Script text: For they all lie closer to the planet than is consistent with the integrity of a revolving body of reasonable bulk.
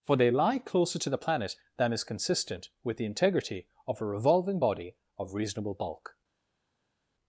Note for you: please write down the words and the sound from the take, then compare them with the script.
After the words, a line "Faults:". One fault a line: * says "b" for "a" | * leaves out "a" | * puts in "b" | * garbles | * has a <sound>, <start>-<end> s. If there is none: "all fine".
For they lie closer to the planet than is consistent with the integrity of a revolving body of reasonable bulk.
Faults:
* leaves out "all"